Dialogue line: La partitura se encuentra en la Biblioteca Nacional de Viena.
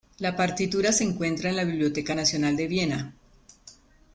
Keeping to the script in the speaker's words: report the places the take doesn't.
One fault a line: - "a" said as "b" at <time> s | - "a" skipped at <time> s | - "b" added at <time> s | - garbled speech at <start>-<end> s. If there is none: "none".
none